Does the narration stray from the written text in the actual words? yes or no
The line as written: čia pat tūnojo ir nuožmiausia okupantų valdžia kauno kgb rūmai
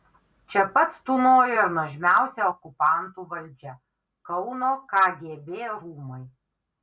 no